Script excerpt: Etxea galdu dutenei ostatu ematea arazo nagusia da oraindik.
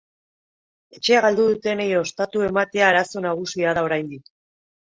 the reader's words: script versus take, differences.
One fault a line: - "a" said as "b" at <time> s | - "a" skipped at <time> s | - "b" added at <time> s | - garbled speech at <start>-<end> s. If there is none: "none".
none